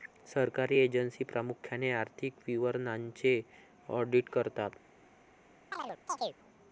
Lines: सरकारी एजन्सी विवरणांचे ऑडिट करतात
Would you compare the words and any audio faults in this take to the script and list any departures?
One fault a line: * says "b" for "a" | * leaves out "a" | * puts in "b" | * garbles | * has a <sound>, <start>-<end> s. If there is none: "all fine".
* puts in "प्रामुख्याने आर्थिक"
* has a chirp, 5.7-6.4 s